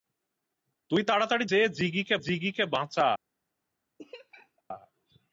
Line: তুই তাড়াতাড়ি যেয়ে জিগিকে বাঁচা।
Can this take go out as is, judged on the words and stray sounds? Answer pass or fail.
fail